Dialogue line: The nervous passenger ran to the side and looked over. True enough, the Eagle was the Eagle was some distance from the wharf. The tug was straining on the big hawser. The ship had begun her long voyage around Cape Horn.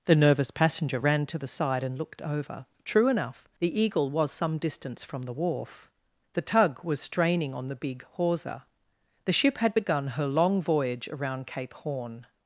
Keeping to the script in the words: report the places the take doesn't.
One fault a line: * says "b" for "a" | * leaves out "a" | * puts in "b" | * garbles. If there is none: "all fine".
* leaves out "the Eagle was"